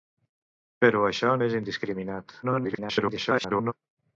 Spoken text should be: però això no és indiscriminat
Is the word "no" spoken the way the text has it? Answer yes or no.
no